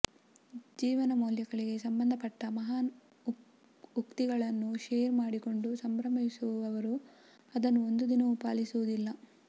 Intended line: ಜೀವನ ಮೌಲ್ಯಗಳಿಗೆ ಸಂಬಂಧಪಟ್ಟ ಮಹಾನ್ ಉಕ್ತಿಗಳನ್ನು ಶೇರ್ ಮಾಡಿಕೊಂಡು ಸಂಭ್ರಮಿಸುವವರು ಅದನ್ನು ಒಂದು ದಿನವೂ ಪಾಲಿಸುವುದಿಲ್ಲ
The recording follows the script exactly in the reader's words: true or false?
true